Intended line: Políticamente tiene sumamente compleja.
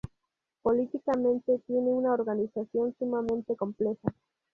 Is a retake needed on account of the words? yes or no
yes